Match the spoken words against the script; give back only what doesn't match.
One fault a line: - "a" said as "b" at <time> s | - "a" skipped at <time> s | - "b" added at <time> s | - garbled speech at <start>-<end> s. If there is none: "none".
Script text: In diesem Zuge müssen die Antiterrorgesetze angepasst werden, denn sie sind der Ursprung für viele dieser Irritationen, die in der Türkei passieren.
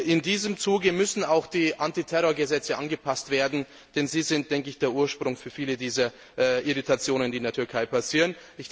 - "auch" added at 1.2 s